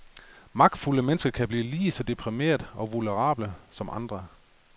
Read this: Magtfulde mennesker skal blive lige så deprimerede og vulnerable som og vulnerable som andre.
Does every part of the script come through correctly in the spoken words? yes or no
no